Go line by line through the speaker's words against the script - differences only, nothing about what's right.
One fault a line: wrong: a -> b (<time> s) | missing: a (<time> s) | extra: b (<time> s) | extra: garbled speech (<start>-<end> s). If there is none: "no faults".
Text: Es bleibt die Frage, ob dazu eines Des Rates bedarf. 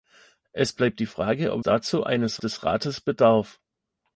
no faults